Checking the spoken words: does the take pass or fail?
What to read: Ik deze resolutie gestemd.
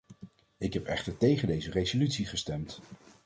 fail